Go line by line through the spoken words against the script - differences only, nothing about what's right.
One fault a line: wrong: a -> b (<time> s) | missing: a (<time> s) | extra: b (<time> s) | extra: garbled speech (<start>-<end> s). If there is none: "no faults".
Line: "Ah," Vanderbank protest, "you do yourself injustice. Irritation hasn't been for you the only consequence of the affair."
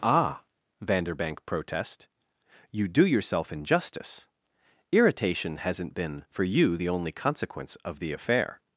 no faults